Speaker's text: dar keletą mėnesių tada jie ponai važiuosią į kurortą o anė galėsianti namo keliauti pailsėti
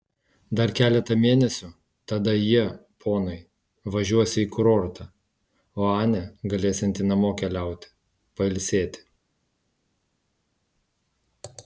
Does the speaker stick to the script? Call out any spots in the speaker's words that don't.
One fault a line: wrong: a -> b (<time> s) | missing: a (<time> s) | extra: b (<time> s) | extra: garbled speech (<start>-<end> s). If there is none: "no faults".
no faults